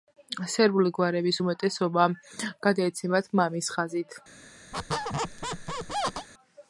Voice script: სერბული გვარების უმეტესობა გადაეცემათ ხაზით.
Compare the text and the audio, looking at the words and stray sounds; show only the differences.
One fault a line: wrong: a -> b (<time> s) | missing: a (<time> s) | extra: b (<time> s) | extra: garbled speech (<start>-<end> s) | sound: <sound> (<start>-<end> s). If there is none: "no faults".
extra: მამის (3.4 s)
sound: squeak (4.7-6.3 s)